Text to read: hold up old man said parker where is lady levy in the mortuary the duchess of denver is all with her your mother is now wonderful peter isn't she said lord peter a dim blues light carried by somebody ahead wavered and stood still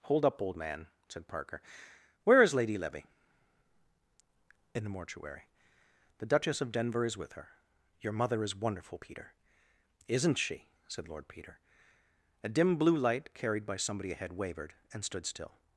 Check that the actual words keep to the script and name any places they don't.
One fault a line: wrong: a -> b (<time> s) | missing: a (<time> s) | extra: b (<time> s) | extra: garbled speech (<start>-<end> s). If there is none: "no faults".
missing: all (7.2 s)
missing: now (8.6 s)
wrong: blues -> blue (12.8 s)